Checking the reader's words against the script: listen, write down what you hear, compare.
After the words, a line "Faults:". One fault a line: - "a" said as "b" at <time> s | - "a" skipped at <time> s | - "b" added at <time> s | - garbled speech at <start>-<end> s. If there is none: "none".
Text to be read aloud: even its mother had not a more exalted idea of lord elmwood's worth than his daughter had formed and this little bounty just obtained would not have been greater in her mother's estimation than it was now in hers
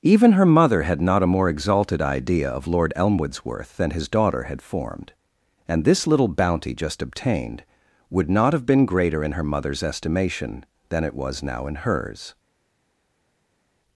even her mother had not a more exalted idea of lord elmwood's worth than his daughter had formed and this little bounty just obtained would not have been greater in her mother's estimation than it was now in hers
Faults:
- "its" said as "her" at 0.3 s